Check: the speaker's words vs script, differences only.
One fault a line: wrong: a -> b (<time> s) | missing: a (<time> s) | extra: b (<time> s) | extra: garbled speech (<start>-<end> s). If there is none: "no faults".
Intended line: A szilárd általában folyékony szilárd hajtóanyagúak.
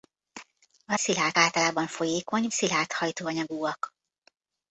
no faults